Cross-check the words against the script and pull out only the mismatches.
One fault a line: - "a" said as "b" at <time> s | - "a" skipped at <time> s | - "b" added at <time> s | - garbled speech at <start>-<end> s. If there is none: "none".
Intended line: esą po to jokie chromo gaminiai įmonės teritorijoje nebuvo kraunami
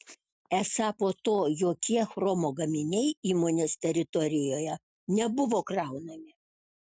none